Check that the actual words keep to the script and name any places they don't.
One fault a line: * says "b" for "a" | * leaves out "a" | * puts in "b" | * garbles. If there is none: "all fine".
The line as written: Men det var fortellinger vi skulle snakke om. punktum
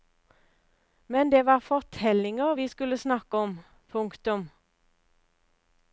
all fine